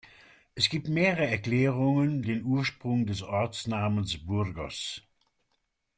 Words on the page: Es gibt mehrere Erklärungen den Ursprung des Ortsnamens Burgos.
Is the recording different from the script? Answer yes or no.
no